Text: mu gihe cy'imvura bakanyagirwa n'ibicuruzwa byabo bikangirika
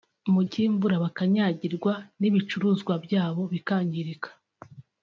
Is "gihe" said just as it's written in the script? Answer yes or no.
no